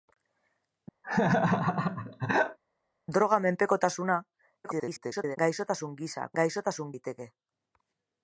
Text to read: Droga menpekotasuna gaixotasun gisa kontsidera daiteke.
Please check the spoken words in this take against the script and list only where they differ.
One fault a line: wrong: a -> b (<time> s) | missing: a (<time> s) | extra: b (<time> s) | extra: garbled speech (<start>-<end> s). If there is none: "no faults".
extra: garbled speech (4.6-5.4 s)
wrong: kontsidera -> gaixotasun (6.4 s)